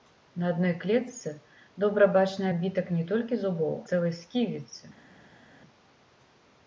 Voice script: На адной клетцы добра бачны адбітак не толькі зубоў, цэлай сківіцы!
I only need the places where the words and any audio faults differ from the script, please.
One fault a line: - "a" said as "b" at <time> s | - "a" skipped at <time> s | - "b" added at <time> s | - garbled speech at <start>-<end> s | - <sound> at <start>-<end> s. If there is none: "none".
none